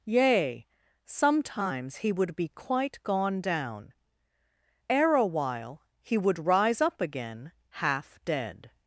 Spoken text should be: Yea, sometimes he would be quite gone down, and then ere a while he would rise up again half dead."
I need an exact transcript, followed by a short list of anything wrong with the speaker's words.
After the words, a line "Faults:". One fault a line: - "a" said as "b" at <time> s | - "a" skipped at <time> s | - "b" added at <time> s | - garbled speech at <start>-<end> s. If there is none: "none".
Yea, sometimes he would be quite gone down, ere a while he would rise up again half dead."
Faults:
- "and then" skipped at 3.9 s